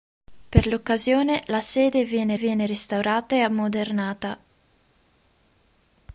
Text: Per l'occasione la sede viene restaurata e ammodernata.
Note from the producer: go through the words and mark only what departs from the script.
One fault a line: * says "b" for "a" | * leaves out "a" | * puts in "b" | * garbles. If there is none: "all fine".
* puts in "viene"